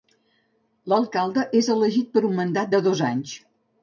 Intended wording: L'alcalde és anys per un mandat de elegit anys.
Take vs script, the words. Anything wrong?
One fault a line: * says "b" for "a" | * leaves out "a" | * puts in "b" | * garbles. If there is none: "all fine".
* says "elegit" for "anys"
* says "dos" for "elegit"